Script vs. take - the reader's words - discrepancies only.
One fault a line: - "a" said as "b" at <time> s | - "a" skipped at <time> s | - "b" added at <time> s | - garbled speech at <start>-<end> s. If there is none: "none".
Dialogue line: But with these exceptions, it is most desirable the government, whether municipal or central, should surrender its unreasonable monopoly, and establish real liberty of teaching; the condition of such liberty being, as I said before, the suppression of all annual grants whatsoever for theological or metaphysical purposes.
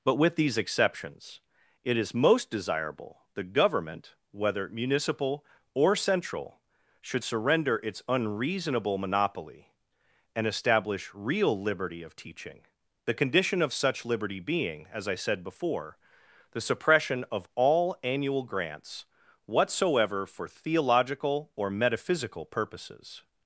none